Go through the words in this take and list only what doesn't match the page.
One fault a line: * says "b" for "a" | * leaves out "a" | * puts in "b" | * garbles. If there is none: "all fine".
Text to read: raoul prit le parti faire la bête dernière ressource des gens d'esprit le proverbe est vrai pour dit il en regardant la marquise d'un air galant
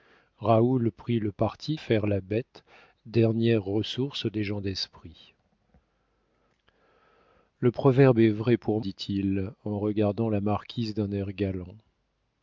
all fine